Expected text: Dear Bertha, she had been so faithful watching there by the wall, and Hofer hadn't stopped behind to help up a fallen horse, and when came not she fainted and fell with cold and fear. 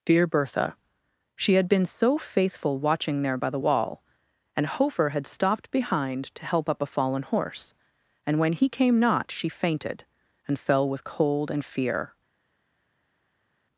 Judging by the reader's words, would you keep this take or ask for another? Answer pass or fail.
fail